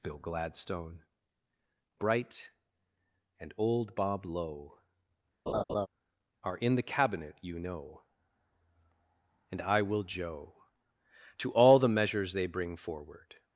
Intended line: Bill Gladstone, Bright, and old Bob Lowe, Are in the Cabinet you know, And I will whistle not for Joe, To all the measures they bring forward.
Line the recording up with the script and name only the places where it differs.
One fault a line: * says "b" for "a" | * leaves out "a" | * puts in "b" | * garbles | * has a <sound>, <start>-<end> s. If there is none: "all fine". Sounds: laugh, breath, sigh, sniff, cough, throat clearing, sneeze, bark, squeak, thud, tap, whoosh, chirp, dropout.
* has a laugh, 5.5-5.9 s
* leaves out "whistle not for"